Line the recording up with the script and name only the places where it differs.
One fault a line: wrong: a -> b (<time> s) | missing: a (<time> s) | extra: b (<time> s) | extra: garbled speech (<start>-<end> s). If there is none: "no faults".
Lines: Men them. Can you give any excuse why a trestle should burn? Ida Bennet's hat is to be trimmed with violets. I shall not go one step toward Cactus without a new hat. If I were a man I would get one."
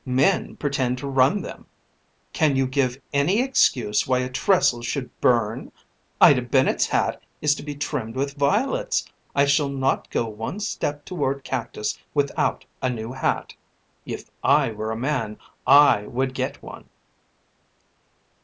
extra: pretend to run (0.6 s)